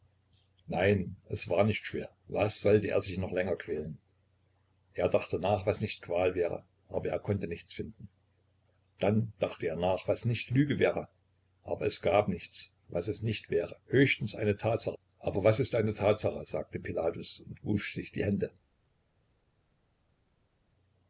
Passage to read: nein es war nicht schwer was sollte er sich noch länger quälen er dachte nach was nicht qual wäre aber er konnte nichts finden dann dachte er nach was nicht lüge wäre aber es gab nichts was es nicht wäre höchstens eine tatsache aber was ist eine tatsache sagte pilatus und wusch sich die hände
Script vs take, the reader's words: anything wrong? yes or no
no